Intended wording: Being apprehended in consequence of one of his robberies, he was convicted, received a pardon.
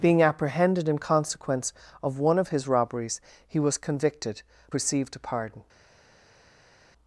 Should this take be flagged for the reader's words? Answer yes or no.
no